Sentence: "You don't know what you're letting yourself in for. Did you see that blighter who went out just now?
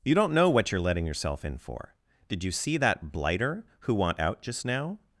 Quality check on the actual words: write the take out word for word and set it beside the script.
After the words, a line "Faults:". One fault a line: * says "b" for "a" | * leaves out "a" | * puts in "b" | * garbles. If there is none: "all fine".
"You don't know what you're letting yourself in for. Did you see that blighter who want out just now?
Faults:
* says "want" for "went"